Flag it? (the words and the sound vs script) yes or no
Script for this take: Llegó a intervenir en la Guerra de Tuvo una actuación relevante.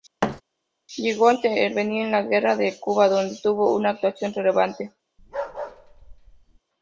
yes